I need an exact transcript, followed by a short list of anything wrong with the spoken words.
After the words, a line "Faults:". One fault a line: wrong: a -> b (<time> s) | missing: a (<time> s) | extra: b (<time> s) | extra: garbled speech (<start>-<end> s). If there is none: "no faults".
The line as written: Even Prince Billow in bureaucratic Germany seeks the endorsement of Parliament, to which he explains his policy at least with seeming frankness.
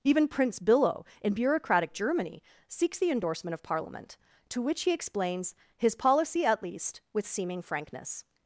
Even Prince Billow in bureaucratic Germany seeks the endorsement of Parliament, to which he explains his policy at least with seeming frankness.
Faults:
no faults